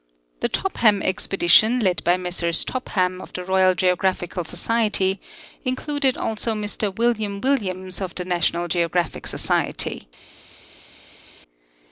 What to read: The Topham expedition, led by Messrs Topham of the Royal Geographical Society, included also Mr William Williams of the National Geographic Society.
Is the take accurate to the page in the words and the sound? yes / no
yes